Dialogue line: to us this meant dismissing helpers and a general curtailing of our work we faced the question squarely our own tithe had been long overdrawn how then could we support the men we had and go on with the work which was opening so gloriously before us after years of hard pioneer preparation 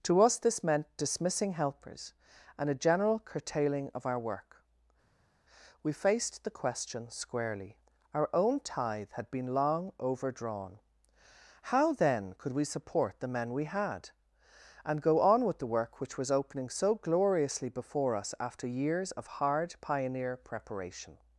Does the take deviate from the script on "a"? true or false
false